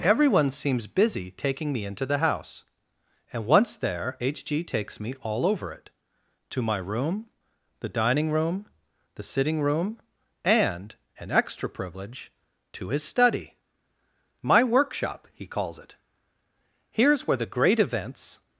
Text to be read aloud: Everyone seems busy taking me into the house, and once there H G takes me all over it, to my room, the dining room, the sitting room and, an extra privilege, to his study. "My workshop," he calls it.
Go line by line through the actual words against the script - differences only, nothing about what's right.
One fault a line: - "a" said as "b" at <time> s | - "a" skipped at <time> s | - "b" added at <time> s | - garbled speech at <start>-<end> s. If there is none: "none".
- "Here's where the great events" added at 16.9 s